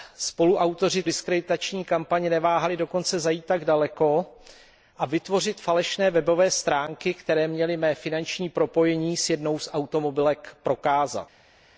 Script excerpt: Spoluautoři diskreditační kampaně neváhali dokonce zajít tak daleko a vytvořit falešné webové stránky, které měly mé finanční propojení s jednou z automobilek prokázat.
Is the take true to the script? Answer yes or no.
yes